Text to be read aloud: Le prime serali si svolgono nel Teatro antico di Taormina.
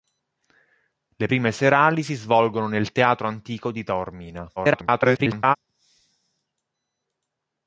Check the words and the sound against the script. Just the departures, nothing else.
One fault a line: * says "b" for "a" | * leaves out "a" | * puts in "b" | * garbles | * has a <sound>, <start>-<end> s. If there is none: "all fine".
* garbles